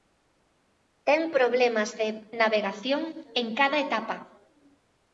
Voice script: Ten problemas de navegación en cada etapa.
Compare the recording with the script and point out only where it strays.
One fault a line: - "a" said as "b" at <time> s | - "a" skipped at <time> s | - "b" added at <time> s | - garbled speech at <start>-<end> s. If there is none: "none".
none